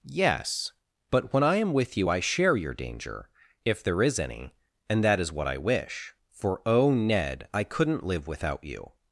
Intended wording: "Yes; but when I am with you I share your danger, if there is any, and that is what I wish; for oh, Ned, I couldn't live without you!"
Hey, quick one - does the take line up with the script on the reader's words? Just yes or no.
yes